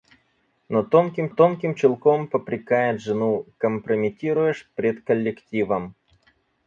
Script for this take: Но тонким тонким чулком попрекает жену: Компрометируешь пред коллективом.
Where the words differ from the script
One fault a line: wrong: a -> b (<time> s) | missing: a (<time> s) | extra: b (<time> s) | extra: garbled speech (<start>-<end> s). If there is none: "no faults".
no faults